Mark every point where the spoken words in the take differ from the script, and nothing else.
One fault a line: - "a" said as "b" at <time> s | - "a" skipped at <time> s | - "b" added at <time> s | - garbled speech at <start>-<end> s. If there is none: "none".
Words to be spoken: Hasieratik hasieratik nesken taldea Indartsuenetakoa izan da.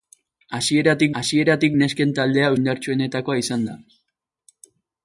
none